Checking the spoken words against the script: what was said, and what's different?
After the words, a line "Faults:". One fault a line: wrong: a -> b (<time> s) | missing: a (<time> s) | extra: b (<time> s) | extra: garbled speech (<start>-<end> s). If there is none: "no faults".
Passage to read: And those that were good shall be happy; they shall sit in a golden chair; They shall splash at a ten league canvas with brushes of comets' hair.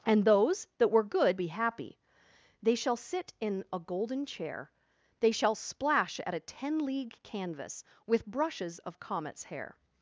And those that were good be happy; they shall sit in a golden chair; They shall splash at a ten league canvas with brushes of comets' hair.
Faults:
missing: shall (1.4 s)